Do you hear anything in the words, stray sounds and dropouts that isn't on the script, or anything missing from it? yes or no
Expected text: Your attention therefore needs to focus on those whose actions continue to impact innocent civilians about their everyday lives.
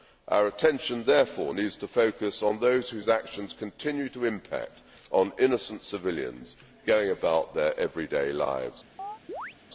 yes